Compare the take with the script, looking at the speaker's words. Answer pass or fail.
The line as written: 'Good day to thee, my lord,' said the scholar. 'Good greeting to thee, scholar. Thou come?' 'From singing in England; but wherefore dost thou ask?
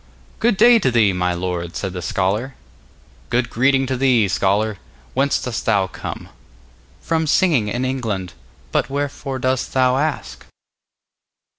fail